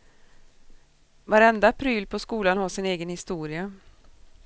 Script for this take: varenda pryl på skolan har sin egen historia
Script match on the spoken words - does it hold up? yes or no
yes